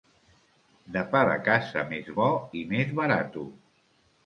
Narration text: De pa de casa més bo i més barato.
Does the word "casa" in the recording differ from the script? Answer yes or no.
no